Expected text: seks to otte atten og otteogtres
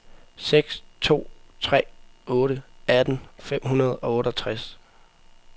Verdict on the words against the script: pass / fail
fail